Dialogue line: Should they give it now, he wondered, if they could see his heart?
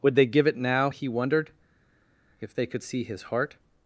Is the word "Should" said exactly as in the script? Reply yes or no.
no